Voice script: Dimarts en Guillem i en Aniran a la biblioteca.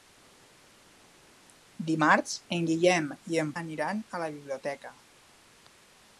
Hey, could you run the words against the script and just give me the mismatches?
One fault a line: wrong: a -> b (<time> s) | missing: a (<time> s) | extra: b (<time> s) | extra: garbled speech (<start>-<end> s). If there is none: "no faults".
no faults